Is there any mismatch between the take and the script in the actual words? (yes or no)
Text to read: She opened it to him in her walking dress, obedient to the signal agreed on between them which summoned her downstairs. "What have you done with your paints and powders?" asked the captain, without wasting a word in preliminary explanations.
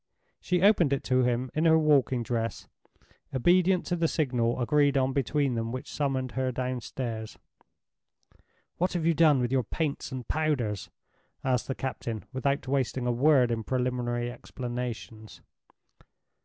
no